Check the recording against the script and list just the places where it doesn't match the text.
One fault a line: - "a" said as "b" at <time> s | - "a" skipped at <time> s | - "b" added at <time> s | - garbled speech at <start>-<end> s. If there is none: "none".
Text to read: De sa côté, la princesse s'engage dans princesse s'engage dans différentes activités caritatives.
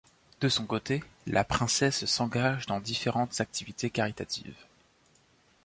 - "sa" said as "son" at 0.5 s
- "princesse s'engage dans" skipped at 2.8 s